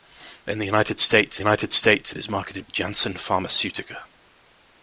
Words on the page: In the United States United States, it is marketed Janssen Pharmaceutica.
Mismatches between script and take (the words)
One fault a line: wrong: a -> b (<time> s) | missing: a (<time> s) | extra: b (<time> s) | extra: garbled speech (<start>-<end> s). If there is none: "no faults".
no faults